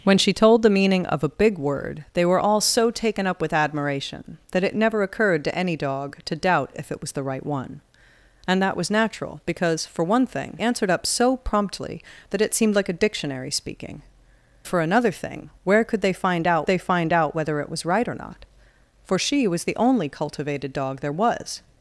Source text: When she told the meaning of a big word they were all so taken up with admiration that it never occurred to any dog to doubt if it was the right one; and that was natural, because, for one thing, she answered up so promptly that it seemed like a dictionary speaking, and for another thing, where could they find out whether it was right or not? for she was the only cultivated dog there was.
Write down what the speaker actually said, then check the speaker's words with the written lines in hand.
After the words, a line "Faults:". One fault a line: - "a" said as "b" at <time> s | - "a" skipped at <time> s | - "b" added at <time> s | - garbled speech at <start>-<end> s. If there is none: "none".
When she told the meaning of a big word they were all so taken up with admiration that it never occurred to any dog to doubt if it was the right one; and that was natural, because, for one thing, answered up so promptly that it seemed like a dictionary speaking, for another thing, where could they find out they find out whether it was right or not? for she was the only cultivated dog there was.
Faults:
- "she" skipped at 10.6 s
- "and" skipped at 14.0 s
- "they find out" added at 16.7 s